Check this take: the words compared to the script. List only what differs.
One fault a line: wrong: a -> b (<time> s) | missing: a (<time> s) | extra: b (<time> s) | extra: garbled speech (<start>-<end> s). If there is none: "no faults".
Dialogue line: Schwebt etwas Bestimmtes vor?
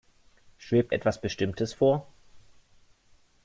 no faults